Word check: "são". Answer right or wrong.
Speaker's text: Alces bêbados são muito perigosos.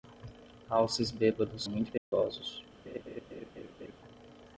wrong